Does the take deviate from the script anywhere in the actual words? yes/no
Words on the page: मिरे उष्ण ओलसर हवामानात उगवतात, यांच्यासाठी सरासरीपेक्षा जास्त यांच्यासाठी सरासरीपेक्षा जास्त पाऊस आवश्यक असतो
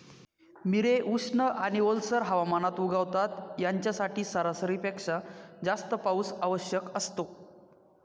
yes